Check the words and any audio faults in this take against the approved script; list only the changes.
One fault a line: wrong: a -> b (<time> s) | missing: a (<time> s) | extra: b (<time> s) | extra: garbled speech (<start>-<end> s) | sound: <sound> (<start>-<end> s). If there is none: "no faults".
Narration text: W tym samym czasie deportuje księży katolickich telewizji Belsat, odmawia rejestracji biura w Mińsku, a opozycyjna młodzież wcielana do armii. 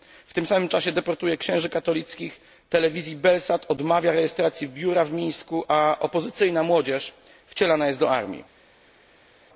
extra: jest (7.9 s)